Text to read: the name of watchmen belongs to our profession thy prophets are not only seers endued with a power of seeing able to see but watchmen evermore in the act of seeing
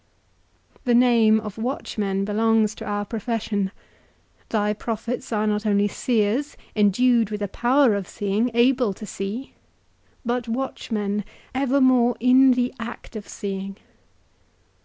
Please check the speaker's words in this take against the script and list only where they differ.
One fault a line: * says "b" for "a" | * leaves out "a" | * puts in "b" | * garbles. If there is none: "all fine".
all fine